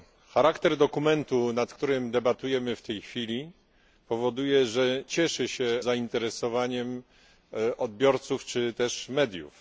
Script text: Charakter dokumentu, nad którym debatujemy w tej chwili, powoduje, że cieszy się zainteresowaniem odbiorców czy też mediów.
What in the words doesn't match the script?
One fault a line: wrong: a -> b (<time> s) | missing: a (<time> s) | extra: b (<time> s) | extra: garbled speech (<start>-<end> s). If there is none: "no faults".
no faults